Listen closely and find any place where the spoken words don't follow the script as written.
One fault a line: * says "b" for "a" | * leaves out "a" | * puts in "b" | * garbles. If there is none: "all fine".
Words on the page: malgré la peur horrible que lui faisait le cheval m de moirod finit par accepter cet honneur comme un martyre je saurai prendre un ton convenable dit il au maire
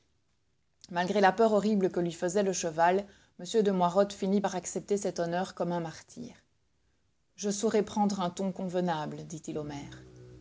all fine